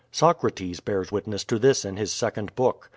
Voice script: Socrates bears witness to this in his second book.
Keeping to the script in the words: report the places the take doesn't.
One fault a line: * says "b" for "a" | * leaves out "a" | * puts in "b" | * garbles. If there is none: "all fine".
all fine